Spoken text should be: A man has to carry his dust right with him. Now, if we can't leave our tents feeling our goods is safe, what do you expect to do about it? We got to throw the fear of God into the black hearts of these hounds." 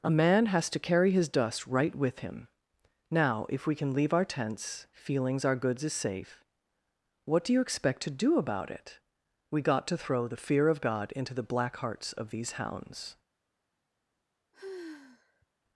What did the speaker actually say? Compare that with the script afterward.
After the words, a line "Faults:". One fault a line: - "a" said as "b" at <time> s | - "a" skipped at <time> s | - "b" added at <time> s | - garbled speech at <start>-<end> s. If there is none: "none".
A man has to carry his dust right with him. Now, if we can leave our tents feelings our goods is safe, what do you expect to do about it? We got to throw the fear of God into the black hearts of these hounds."
Faults:
- "can't" said as "can" at 3.7 s
- "feeling" said as "feelings" at 4.9 s